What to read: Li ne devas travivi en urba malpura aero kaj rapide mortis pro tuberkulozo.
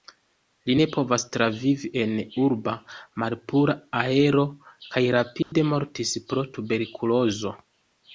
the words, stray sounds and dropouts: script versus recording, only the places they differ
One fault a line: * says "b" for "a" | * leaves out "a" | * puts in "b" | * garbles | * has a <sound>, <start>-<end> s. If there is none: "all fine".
* says "povas" for "devas"
* has a dropout, 5.4-5.5 s